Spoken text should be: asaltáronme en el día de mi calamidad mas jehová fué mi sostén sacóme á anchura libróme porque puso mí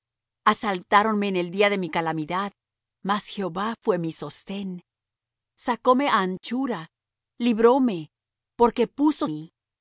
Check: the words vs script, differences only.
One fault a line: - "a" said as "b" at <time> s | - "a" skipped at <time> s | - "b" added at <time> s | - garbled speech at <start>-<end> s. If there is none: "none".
none